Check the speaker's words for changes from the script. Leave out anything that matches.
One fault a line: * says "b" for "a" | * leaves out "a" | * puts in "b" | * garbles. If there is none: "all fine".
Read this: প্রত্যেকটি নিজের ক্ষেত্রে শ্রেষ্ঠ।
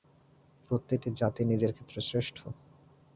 * puts in "জাতি"